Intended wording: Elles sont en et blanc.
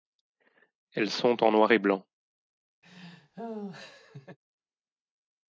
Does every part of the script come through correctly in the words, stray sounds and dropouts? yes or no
no